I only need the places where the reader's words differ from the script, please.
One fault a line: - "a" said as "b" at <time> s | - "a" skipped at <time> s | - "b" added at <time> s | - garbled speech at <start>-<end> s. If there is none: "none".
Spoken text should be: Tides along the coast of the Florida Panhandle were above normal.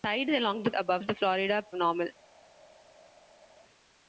- "coast" said as "above" at 0.8 s
- "Panhandle were above" skipped at 1.6 s